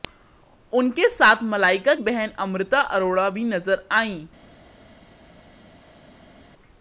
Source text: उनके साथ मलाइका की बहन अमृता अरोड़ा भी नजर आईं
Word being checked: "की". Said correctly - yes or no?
no